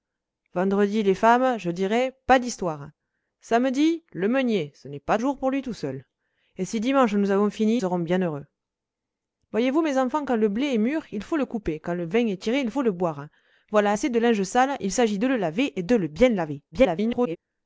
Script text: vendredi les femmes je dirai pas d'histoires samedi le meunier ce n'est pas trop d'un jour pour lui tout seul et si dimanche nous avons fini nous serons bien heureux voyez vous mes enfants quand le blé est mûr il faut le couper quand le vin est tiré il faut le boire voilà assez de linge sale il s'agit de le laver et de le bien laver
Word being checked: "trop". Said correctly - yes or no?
no